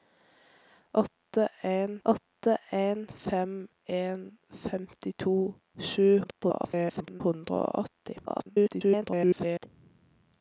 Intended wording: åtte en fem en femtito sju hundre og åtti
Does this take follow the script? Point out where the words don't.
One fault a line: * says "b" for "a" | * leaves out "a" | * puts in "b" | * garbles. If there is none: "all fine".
* puts in "åtte en"
* garbles
* garbles